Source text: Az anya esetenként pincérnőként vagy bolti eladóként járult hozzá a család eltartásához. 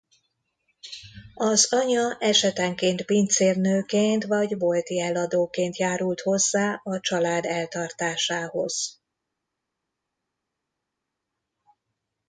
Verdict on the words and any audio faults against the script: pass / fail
pass